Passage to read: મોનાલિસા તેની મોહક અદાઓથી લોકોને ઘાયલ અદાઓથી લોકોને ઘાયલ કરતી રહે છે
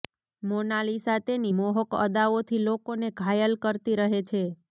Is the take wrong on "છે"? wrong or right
right